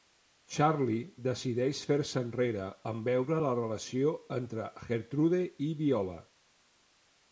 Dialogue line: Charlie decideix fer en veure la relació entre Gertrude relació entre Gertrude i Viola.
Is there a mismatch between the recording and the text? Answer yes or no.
yes